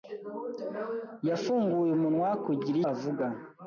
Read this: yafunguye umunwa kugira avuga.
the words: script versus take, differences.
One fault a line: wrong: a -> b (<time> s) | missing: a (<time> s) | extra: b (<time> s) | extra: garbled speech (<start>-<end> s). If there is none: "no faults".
no faults